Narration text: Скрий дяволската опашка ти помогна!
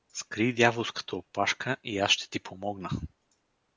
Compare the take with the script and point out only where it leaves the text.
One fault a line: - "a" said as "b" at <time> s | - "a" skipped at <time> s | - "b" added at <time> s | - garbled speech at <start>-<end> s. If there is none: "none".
- "и аз ще" added at 1.8 s